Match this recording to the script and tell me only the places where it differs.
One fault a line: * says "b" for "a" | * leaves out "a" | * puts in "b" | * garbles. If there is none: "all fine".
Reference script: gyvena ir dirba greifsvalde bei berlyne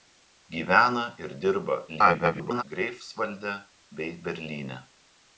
* garbles